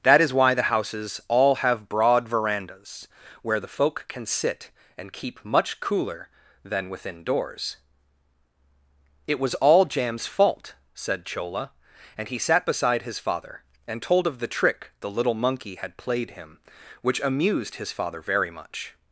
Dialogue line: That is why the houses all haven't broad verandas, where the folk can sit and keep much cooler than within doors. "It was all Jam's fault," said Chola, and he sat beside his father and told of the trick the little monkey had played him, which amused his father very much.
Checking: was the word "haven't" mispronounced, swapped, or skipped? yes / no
yes